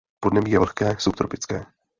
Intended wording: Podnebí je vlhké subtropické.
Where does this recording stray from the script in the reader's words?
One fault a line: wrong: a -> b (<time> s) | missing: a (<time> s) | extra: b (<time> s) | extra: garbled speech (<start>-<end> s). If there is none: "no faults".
no faults